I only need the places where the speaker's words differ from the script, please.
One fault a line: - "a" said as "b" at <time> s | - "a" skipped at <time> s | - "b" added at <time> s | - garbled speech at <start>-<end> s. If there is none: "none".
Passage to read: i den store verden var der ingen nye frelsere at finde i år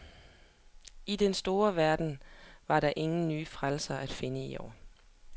none